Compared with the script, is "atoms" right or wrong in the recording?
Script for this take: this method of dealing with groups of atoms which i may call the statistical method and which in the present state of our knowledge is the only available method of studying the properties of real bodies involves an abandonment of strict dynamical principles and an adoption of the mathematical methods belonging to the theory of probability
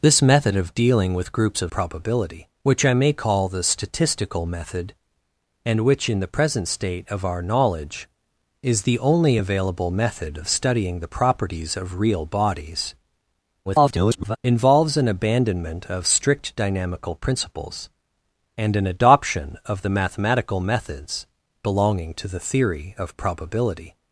wrong